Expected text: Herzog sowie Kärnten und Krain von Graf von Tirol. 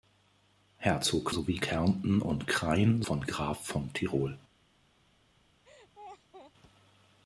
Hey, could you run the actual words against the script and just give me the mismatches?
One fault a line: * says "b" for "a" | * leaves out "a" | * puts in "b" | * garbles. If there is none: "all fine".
all fine